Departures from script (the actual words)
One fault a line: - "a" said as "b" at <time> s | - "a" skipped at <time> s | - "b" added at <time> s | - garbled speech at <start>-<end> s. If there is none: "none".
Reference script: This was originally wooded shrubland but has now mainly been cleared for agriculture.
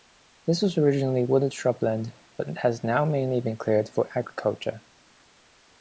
none